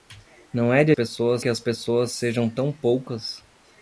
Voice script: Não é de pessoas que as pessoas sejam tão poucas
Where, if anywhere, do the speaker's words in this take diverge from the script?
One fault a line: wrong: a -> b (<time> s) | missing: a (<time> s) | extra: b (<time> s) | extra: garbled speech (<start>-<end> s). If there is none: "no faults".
no faults